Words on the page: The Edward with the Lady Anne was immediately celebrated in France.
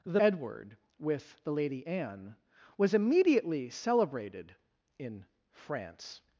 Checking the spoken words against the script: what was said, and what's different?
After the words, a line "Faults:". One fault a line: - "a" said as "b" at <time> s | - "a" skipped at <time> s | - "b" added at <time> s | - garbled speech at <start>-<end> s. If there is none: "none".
The Edward with the Lady Anne was immediately celebrated in France.
Faults:
none